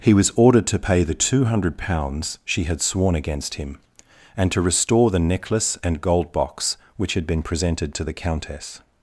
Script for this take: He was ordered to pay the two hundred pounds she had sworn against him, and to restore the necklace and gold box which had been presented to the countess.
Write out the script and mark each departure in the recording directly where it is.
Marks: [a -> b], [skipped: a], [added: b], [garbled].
He was ordered to pay the two hundred pounds she had sworn against him, and to restore the necklace and gold box which had been presented to the countess.